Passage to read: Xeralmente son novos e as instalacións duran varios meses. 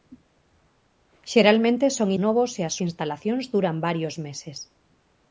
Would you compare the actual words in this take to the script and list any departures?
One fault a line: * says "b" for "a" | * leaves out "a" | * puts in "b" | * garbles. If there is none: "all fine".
all fine